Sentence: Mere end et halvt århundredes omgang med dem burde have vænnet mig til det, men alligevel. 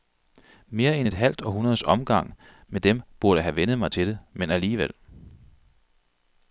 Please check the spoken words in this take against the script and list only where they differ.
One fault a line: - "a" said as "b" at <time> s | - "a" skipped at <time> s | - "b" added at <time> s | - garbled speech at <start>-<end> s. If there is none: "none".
none